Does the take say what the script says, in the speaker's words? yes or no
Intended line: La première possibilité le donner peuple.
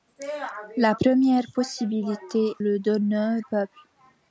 yes